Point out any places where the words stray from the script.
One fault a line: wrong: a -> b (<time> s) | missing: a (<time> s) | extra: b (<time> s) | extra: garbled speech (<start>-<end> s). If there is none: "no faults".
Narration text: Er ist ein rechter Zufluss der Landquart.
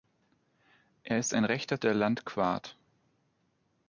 missing: Zufluss (1.8 s)